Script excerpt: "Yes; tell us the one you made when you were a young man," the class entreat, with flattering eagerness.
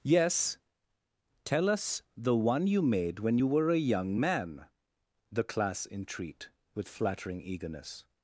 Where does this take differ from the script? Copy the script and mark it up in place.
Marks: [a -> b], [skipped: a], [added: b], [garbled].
"Yes; tell us the one you made when you were a young man," the class entreat, with flattering eagerness.